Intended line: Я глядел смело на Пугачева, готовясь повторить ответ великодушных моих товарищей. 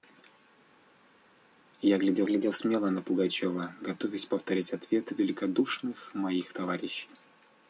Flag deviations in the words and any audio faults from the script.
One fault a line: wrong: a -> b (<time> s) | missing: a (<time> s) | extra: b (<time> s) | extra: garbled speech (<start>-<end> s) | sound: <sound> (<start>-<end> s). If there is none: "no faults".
extra: глядел (2.3 s)